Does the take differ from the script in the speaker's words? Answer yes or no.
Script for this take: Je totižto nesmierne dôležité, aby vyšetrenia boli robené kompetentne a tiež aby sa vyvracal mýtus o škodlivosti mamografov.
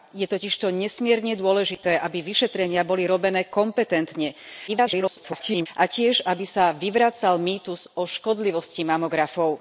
yes